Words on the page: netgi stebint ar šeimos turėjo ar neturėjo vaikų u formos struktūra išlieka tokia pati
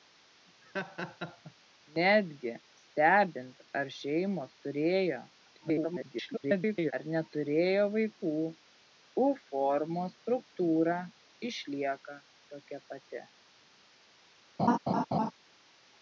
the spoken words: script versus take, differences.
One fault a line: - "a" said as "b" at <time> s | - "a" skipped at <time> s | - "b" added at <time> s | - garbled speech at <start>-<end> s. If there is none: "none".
- garbled speech at 5.5-6.9 s